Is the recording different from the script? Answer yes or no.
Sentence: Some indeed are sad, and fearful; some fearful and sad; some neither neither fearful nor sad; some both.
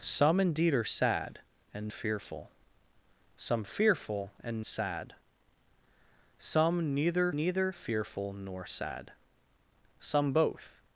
no